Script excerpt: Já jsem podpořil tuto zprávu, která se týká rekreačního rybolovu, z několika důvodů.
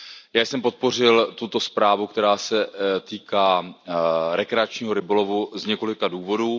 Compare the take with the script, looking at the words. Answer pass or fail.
pass